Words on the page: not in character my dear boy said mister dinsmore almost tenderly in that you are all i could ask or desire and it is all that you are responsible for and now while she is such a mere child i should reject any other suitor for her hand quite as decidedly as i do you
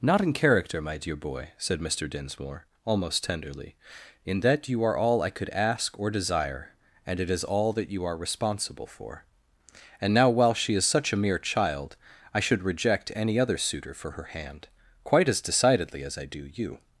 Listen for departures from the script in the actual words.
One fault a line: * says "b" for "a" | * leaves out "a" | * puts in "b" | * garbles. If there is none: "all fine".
all fine